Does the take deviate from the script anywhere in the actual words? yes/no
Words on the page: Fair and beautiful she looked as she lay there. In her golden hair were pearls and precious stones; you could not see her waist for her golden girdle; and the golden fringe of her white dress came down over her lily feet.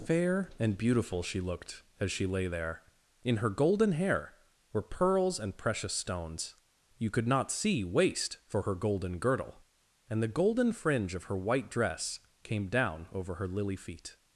yes